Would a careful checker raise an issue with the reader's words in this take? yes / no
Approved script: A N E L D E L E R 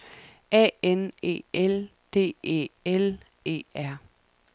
no